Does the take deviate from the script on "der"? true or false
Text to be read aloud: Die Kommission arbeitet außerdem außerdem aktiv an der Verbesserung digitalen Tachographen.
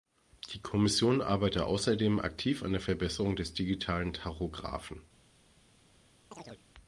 false